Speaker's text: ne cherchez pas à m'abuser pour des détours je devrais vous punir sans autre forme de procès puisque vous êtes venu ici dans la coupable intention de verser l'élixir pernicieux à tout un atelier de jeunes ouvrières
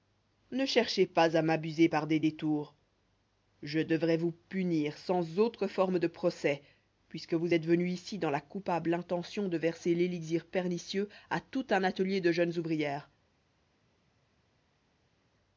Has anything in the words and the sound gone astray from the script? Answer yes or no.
yes